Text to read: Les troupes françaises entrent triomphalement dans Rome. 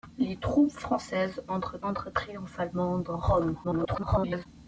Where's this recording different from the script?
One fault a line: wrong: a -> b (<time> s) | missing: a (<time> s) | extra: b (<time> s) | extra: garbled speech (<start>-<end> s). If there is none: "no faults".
extra: entrent (1.8 s)
extra: garbled speech (3.6-4.5 s)